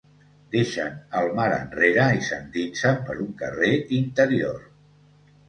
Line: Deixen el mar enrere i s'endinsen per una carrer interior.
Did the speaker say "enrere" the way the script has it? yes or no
yes